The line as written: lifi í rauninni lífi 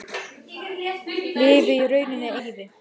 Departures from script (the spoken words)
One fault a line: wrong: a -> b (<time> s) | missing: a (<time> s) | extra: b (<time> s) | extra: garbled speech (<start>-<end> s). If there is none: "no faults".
no faults